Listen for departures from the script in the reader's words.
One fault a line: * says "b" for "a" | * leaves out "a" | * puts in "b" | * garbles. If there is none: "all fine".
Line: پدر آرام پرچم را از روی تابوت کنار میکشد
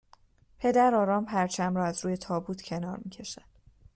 all fine